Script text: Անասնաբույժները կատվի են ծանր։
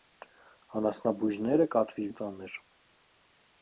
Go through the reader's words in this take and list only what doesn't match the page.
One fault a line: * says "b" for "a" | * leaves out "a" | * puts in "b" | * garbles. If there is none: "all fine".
all fine